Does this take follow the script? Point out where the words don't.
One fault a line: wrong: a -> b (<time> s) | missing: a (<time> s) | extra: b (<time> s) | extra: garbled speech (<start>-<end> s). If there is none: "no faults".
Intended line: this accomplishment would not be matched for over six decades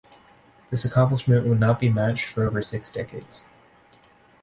no faults